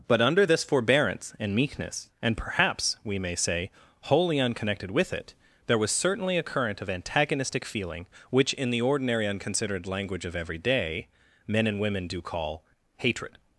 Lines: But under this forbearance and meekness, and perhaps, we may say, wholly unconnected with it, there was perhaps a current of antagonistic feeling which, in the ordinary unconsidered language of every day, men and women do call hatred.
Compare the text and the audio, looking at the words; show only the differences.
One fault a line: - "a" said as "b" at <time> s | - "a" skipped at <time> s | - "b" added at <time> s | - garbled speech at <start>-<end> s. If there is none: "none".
- "perhaps" said as "certainly" at 5.9 s